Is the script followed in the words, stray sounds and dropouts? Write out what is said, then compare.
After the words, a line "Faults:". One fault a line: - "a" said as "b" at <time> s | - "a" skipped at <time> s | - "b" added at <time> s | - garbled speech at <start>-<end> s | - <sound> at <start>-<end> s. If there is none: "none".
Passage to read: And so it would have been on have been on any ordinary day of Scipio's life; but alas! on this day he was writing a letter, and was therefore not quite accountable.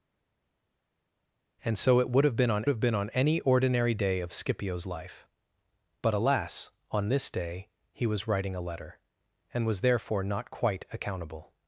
And so it would have been on have been on any ordinary day of Scipio's life; but alas! on this day he was writing a letter, and was therefore not quite accountable.
Faults:
none